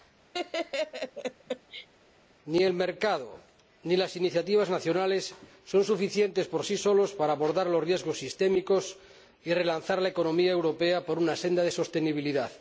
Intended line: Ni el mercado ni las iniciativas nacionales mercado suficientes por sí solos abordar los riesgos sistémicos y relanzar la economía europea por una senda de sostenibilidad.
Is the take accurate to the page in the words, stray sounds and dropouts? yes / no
no